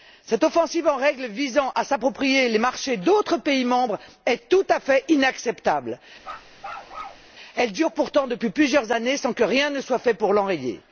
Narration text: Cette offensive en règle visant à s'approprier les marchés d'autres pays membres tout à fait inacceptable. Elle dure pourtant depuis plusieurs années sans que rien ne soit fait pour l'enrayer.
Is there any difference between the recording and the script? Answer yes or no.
yes